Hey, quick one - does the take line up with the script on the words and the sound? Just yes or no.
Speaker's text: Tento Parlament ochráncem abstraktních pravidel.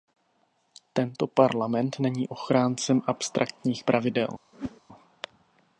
no